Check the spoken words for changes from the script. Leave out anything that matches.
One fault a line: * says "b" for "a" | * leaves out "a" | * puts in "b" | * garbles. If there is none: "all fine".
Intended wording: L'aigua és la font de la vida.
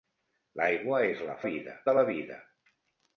* says "vida" for "font"